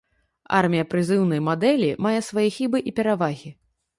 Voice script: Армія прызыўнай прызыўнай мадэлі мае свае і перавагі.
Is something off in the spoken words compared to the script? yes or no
yes